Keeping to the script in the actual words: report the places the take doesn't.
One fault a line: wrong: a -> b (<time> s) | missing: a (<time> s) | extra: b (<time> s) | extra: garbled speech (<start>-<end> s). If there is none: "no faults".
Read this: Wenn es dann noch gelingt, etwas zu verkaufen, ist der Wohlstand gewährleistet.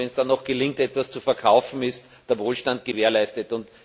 no faults